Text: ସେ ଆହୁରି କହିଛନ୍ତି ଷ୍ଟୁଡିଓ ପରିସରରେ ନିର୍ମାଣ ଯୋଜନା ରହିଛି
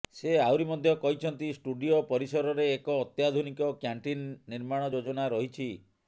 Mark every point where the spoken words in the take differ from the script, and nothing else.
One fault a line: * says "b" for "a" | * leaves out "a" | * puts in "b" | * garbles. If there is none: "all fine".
* puts in "ମଧ୍ୟ"
* puts in "ଏକ ଅତ୍ୟାଧୁନିକ କ୍ୟାଣ୍ଟିନ୍"